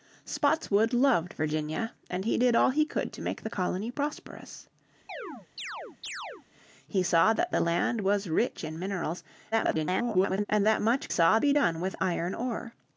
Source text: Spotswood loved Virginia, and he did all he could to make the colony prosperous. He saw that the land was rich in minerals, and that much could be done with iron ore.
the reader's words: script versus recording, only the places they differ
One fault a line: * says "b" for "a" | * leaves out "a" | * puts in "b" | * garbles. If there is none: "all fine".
* garbles
* says "saw" for "could"